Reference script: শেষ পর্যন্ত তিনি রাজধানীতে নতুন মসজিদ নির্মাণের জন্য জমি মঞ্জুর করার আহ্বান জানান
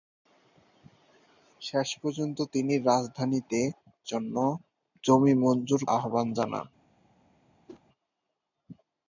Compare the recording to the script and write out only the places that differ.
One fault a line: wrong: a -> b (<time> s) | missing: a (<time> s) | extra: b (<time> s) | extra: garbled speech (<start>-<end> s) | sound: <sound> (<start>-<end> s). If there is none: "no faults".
missing: নতুন মসজিদ নির্মাণের (3.6 s)
missing: করার (5.8 s)
sound: whoosh (7.7-7.8 s)